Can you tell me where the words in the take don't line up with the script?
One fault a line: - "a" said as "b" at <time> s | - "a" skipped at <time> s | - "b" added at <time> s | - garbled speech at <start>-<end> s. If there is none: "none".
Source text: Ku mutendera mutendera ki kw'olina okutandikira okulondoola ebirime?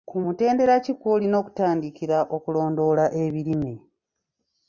- "mutendera" skipped at 0.7 s